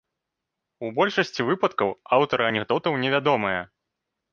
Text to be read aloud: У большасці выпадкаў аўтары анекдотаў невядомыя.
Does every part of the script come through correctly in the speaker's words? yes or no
yes